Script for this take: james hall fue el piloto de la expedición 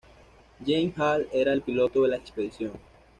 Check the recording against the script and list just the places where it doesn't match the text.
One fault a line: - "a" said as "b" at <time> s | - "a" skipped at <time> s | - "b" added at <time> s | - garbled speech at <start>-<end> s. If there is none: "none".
- "fue" said as "era" at 1.3 s